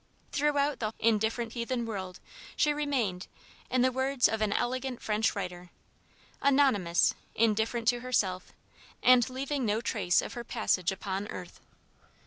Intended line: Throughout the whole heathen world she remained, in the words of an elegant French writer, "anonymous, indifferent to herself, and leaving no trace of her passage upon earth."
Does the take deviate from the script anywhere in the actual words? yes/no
yes